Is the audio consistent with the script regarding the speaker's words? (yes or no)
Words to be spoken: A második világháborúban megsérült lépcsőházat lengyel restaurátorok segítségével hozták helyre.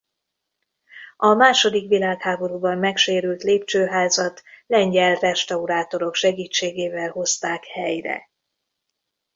yes